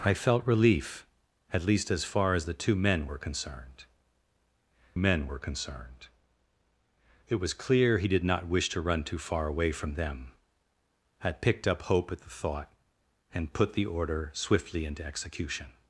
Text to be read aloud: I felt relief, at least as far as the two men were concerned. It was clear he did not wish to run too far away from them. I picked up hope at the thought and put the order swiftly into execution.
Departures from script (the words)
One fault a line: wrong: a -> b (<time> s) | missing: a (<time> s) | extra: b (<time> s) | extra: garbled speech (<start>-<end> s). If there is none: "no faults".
extra: men were concerned (4.9 s)